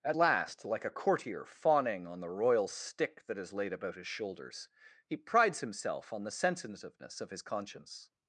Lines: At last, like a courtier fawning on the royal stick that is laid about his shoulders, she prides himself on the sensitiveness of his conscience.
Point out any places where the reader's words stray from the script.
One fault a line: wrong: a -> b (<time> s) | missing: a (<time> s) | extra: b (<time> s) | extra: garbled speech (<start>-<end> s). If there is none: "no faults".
wrong: she -> he (5.1 s)